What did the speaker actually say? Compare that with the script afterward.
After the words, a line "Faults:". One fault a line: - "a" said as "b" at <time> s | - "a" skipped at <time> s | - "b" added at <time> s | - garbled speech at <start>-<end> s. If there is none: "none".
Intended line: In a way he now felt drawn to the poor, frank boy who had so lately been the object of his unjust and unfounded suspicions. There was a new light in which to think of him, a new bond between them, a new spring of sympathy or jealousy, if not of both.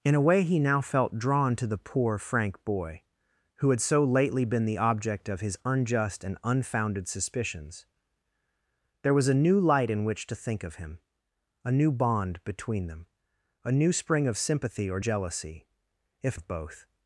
In a way he now felt drawn to the poor, frank boy who had so lately been the object of his unjust and unfounded suspicions. There was a new light in which to think of him, a new bond between them, a new spring of sympathy or jealousy, if of both.
Faults:
- "not" skipped at 16.4 s